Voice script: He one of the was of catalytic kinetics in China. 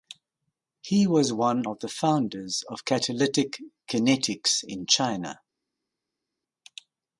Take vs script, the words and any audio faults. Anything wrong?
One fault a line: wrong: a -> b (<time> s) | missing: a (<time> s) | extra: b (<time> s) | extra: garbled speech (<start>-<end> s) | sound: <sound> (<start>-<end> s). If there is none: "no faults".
extra: was (1.1 s)
wrong: was -> founders (1.9 s)